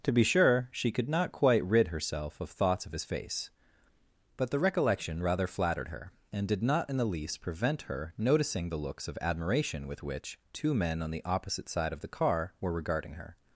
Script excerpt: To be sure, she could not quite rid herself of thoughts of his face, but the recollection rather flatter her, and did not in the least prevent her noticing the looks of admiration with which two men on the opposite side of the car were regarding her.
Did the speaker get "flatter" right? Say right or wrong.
wrong